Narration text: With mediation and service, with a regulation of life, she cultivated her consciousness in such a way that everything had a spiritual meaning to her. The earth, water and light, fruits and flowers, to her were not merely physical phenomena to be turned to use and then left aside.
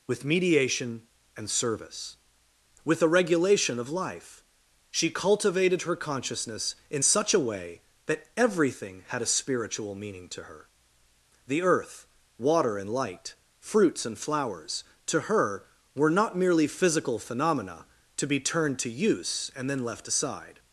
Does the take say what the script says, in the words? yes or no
yes